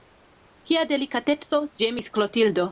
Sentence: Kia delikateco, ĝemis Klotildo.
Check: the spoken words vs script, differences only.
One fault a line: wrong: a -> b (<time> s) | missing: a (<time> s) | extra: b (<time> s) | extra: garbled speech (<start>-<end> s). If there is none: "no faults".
no faults